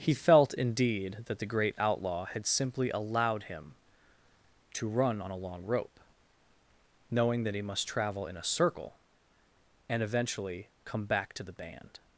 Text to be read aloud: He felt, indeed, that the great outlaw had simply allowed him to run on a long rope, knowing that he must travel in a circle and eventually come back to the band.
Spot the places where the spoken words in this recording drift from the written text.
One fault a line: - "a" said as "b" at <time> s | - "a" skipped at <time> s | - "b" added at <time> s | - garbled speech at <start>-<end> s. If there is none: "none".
none